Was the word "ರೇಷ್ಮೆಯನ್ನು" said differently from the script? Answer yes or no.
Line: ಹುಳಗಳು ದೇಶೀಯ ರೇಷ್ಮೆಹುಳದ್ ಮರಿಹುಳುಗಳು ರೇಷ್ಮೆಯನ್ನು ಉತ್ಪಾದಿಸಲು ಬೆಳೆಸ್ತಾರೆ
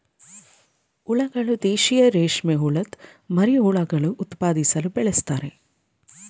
yes